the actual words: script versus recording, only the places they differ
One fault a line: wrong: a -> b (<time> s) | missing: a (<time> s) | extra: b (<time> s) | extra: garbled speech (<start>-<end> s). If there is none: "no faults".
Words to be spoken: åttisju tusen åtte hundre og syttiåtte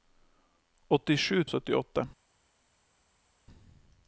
missing: tusen åtte hundre (1.4 s)